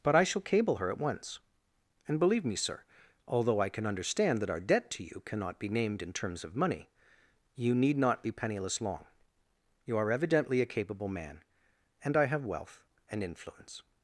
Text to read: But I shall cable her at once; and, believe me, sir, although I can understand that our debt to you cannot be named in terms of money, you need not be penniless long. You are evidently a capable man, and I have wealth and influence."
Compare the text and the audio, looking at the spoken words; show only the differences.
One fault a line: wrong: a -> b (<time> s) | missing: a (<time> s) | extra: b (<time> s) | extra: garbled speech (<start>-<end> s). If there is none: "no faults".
no faults